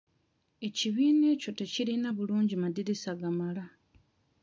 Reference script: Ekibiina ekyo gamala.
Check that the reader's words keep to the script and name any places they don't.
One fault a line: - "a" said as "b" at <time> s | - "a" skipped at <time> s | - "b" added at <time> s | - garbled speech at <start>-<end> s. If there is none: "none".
- "tekirina bulungi madirisa" added at 1.6 s